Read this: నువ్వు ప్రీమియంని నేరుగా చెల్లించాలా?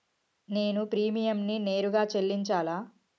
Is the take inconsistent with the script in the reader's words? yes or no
yes